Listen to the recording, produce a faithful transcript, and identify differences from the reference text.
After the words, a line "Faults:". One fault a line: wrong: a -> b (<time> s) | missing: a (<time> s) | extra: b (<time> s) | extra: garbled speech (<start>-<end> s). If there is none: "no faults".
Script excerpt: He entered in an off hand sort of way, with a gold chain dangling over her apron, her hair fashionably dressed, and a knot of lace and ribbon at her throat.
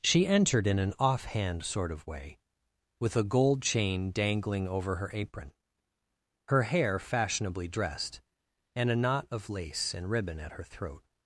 She entered in an off hand sort of way, with a gold chain dangling over her apron, her hair fashionably dressed, and a knot of lace and ribbon at her throat.
Faults:
wrong: He -> She (0.0 s)